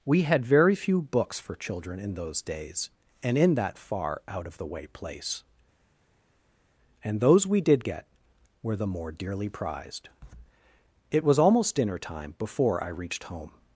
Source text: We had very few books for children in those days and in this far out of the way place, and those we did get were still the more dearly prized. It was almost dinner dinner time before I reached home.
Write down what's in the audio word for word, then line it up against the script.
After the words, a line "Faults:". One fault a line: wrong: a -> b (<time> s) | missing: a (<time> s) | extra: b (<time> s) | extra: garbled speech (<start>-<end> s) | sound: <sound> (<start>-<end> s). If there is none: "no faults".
We had very few books for children in those days and in that far out of the way place, and those we did get were the more dearly prized. It was almost dinner time before I reached home.
Faults:
wrong: this -> that (3.5 s)
missing: still (8.7 s)
missing: dinner (12.0 s)